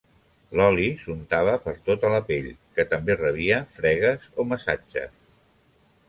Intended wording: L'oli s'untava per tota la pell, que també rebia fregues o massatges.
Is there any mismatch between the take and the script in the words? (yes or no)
no